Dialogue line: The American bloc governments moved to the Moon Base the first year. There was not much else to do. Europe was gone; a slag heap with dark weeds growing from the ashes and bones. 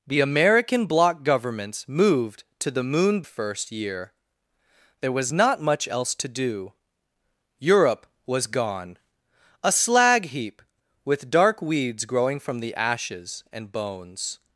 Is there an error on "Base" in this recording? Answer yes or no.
yes